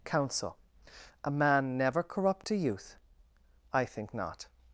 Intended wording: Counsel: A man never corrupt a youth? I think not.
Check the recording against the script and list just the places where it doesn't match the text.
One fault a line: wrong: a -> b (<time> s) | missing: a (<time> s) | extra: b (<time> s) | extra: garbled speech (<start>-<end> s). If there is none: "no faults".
no faults